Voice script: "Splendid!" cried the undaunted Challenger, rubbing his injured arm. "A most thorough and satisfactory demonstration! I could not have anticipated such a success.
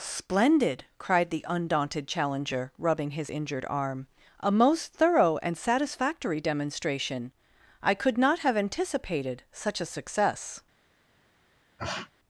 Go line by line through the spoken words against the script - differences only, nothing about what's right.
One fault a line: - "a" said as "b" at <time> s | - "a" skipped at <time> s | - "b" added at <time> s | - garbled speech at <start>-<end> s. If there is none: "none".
none